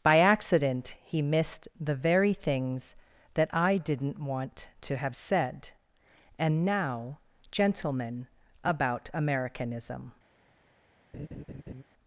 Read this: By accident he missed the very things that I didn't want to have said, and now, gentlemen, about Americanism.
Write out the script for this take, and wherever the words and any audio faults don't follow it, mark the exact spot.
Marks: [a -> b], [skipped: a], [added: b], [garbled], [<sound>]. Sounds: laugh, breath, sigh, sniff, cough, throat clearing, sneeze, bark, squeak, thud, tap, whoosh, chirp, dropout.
By accident he missed the very things that I didn't want to have said, and now, gentlemen, about Americanism. [laugh]